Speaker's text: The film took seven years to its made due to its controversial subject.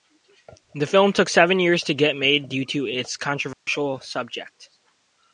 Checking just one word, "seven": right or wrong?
right